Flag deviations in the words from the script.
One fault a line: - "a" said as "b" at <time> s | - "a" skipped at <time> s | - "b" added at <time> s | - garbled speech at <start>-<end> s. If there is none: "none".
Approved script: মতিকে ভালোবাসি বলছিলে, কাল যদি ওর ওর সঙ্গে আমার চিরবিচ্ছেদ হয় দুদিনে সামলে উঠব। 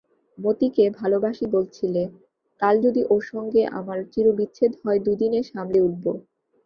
- "ওর" skipped at 3.2 s